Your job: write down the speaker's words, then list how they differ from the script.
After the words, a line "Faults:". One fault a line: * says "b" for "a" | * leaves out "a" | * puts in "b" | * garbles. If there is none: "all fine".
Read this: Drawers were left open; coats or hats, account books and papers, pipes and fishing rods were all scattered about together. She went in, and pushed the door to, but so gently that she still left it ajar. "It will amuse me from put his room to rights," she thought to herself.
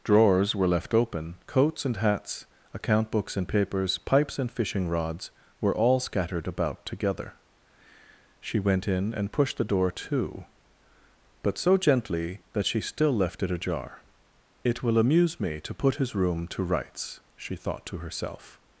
Drawers were left open; coats and hats, account books and papers, pipes and fishing rods were all scattered about together. She went in, and pushed the door to, but so gently that she still left it ajar. "It will amuse me to put his room to rights," she thought to herself.
Faults:
* says "and" for "or"
* says "to" for "from"